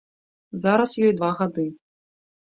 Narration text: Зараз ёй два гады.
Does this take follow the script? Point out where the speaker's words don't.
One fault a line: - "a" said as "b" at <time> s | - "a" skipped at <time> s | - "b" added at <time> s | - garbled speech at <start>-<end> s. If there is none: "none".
none